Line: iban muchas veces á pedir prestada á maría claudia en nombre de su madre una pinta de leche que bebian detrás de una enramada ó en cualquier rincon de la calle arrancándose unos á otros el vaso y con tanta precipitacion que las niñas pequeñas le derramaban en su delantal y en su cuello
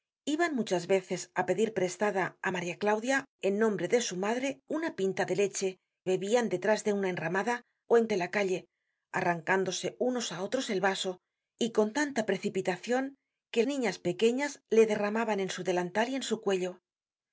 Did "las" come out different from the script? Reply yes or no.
yes